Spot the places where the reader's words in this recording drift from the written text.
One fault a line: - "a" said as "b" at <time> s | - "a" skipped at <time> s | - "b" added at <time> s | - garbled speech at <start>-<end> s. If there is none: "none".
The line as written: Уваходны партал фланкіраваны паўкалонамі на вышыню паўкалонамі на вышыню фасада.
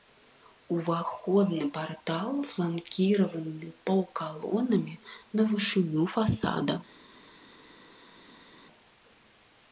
- "паўкалонамі на вышыню" skipped at 6.0 s